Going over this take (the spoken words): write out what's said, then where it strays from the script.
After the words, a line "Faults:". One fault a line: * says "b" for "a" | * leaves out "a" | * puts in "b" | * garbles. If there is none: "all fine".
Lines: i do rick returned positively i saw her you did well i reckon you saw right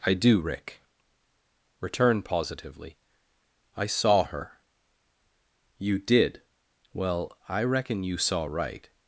i do rick return positively i saw her you did well i reckon you saw right
Faults:
* says "return" for "returned"